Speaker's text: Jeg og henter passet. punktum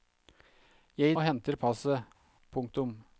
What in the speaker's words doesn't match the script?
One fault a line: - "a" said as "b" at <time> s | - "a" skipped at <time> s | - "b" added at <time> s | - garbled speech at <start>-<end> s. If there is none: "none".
none